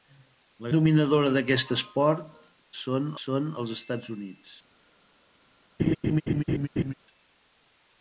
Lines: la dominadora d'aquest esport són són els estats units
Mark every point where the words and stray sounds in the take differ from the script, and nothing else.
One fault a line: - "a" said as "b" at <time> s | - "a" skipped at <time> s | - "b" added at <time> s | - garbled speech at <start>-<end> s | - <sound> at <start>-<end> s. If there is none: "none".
- laugh at 5.8-6.9 s